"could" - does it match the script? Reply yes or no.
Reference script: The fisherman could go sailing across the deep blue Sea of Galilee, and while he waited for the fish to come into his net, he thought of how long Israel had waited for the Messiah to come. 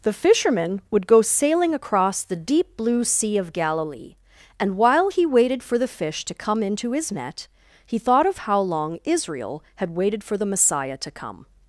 no